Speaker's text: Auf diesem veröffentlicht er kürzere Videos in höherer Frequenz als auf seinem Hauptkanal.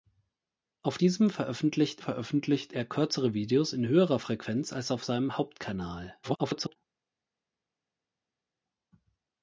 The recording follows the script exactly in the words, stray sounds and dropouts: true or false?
false